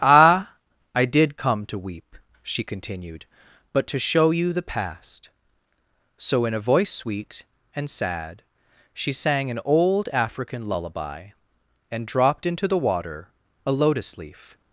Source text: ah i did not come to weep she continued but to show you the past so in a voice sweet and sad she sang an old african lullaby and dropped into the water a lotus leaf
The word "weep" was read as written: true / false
true